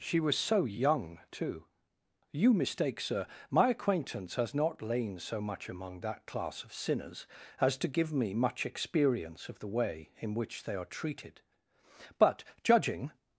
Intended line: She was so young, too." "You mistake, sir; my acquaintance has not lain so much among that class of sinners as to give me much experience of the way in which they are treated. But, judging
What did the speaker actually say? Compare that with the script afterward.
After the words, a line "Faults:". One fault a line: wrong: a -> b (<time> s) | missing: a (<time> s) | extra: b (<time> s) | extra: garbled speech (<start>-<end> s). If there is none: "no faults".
She was so young, too." "You mistake, sir; my acquaintance has not lain so much among that class of sinners as to give me much experience of the way in which they are treated. But, judging
Faults:
no faults